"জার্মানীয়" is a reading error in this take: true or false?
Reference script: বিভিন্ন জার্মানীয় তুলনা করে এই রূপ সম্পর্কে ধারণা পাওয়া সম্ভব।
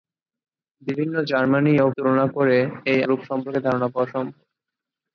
false